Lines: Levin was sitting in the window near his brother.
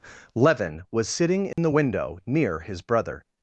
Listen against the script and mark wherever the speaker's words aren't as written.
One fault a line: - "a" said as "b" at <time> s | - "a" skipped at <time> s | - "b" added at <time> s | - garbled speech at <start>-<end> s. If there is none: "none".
none